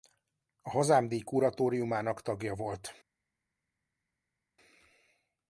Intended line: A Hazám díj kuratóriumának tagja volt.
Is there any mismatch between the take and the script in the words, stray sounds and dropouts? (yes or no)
no